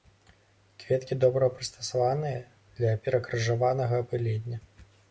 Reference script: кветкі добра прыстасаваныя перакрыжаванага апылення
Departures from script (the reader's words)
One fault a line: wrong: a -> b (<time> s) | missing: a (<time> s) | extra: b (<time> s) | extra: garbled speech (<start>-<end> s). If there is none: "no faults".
extra: для (2.8 s)